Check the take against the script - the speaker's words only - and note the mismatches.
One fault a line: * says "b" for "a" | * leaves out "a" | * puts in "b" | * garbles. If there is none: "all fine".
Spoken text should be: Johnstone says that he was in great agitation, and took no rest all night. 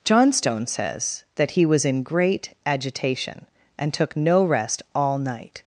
all fine